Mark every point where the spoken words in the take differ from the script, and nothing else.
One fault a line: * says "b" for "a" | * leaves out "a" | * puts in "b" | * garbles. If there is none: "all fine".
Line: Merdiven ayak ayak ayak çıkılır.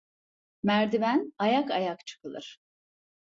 * leaves out "ayak"